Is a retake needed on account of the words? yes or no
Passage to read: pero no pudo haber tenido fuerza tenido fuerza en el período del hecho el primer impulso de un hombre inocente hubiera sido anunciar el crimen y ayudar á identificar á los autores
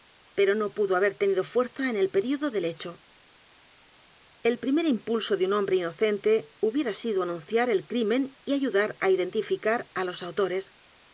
yes